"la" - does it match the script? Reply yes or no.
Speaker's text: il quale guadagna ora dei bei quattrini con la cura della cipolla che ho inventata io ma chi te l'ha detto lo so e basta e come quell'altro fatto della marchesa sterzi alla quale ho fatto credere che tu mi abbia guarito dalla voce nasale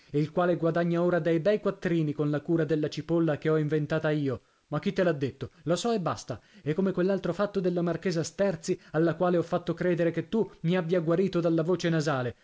yes